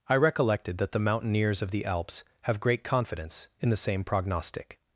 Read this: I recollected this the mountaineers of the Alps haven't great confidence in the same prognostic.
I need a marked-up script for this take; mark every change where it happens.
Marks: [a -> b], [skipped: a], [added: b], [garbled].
I recollected [this -> that] the mountaineers of the Alps [haven't -> have] great confidence in the same prognostic.